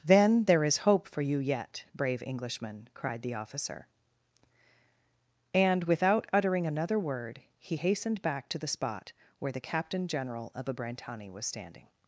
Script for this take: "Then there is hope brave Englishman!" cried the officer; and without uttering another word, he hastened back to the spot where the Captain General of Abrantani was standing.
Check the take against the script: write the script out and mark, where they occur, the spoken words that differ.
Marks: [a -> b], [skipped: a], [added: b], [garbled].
"Then there is hope [added: for you yet] brave Englishman!" cried the officer; and without uttering another word, he hastened back to the spot where the Captain General of Abrantani was standing.